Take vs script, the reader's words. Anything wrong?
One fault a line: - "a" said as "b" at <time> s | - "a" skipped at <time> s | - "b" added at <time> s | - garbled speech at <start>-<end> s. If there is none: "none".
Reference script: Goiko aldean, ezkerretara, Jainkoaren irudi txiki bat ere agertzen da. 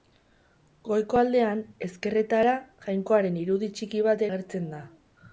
- "ere" skipped at 4.3 s